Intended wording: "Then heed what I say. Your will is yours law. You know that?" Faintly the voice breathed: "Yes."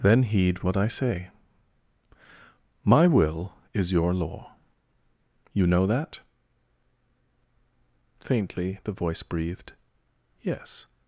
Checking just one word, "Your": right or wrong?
wrong